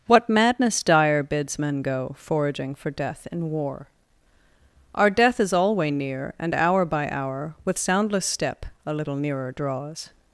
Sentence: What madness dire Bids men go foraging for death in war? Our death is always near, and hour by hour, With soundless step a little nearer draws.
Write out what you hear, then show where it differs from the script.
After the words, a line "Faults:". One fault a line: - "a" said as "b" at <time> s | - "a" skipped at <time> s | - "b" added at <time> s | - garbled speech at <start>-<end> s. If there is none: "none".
What madness dire Bids men go foraging for death in war? Our death is alway near, and hour by hour, With soundless step a little nearer draws.
Faults:
- "always" said as "alway" at 5.5 s